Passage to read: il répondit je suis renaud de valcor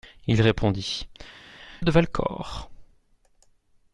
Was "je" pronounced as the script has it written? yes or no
no